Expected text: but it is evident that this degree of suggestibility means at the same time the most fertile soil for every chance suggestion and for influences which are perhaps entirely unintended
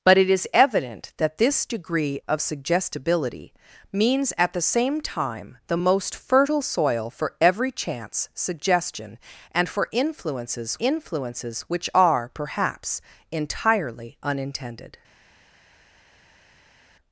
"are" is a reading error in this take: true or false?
false